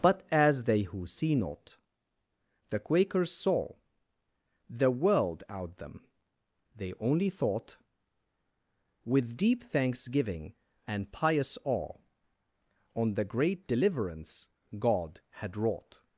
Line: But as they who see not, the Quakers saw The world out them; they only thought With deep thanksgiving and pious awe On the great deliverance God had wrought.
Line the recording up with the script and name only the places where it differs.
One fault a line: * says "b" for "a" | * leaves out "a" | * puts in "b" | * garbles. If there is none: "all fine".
all fine